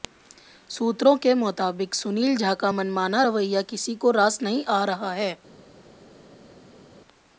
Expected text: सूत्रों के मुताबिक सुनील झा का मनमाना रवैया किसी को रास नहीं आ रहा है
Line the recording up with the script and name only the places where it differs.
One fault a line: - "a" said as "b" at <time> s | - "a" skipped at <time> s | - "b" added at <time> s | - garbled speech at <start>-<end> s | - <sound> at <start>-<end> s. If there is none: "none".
none